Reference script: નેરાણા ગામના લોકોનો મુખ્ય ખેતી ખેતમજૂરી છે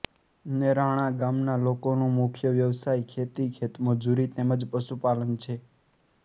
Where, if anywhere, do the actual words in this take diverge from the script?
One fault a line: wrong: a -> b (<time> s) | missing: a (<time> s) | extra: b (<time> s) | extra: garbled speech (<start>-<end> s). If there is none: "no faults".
extra: વ્યવસાય (2.5 s)
extra: તેમ જ પશુપાલન (4.3 s)